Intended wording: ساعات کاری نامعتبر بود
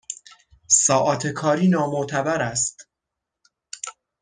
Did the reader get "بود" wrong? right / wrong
wrong